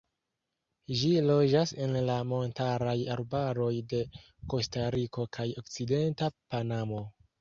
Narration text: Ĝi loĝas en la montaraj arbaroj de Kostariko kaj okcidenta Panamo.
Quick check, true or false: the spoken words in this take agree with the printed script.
true